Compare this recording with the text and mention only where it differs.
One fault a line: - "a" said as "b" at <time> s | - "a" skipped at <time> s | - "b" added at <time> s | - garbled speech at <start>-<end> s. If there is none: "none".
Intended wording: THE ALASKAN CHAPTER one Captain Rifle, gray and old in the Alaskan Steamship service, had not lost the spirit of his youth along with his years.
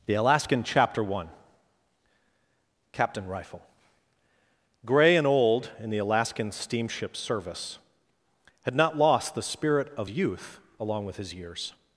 - "his" skipped at 10.1 s